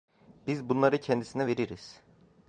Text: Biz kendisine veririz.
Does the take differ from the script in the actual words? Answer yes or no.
yes